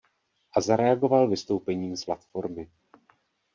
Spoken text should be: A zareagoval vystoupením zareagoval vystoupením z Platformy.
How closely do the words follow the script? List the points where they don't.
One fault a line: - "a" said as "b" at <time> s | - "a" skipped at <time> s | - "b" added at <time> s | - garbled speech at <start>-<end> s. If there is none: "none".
- "zareagoval vystoupením" skipped at 2.0 s